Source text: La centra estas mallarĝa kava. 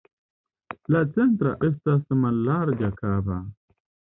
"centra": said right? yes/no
yes